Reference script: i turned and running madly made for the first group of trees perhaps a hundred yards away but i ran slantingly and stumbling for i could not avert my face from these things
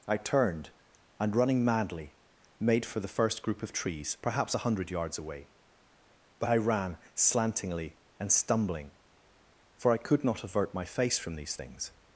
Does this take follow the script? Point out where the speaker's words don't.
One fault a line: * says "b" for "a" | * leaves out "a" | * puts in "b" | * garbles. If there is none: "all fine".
all fine